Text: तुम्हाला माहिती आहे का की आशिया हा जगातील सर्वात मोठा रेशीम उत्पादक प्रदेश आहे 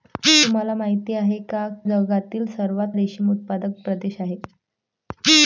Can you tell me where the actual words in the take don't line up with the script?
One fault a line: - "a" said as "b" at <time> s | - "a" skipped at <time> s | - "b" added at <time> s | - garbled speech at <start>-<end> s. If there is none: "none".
- "की आशिया हा" skipped at 1.7 s
- "मोठा" skipped at 3.0 s